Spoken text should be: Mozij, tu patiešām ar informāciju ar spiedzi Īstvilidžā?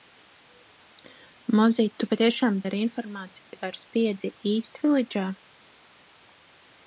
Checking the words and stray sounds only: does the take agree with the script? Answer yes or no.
no